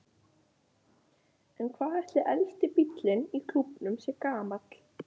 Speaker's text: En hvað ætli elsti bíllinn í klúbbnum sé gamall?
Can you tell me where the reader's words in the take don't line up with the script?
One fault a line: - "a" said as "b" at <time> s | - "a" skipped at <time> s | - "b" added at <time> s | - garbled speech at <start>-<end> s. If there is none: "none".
none